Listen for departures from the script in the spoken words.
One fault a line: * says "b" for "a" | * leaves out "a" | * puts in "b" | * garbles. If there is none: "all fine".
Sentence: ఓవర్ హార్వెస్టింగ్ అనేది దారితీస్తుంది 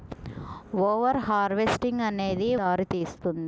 all fine